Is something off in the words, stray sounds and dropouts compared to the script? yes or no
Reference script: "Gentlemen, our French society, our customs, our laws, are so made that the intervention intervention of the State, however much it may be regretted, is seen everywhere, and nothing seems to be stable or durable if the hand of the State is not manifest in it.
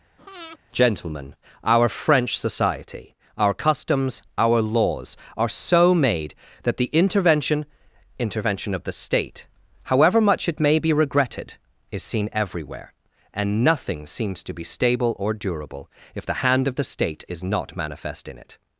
yes